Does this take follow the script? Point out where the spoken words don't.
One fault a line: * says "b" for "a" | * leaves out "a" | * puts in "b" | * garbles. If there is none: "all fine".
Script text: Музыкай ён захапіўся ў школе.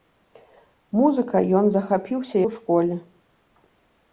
all fine